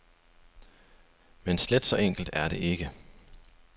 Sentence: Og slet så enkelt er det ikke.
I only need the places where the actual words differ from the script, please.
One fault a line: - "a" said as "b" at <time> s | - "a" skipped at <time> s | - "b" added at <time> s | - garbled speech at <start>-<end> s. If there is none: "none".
- "Og" said as "Men" at 1.4 s